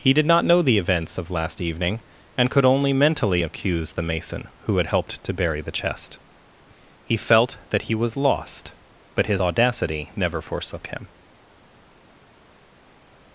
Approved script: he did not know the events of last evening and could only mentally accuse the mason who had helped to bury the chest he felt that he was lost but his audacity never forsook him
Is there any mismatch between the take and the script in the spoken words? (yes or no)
no